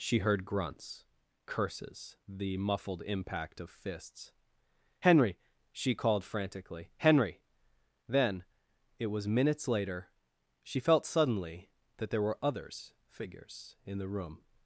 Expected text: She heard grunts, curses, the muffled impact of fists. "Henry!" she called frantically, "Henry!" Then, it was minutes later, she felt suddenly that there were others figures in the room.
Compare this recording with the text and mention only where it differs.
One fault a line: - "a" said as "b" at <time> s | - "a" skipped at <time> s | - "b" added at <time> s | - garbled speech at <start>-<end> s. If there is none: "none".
none